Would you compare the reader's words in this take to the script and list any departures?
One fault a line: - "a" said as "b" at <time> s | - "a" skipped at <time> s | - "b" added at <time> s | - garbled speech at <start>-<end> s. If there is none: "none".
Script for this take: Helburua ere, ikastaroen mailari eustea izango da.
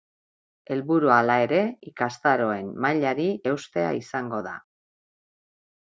- "hala" added at 1.2 s